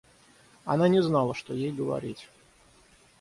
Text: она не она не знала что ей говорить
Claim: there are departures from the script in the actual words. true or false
true